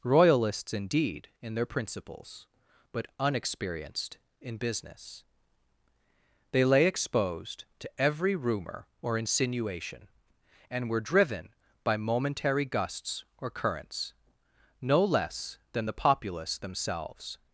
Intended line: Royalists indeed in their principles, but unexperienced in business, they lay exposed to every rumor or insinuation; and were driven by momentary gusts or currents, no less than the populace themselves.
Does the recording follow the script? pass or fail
pass